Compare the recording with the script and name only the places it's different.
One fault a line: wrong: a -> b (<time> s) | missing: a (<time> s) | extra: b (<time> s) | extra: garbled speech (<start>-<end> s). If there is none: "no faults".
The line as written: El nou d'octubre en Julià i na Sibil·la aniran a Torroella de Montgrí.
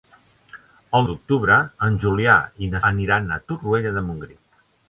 missing: nou (1.1 s)
missing: Sibil·la (2.8 s)